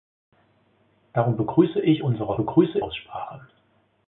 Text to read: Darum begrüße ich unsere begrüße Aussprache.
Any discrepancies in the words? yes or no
no